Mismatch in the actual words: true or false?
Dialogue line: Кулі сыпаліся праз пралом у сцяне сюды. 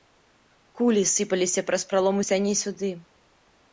false